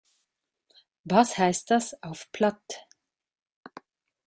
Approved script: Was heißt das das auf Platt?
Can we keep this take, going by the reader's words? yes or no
no